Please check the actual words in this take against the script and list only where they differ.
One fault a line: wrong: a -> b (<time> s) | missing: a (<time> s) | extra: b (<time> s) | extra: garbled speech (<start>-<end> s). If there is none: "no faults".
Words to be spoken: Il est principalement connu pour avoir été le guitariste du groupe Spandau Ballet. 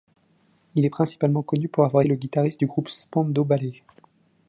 missing: été (2.0 s)